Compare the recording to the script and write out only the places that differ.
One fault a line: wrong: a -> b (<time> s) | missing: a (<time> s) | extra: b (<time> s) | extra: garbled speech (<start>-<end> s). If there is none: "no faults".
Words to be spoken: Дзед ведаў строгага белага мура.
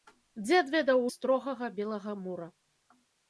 no faults